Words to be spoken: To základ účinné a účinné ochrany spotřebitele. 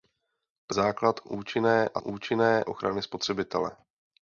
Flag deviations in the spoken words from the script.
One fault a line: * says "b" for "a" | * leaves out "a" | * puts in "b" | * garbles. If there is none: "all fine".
all fine